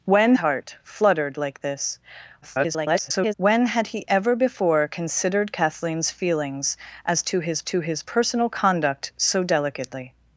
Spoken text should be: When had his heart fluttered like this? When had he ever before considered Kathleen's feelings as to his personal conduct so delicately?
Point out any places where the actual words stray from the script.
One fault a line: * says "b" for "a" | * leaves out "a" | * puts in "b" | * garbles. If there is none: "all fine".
* leaves out "had his"
* garbles
* puts in "to his"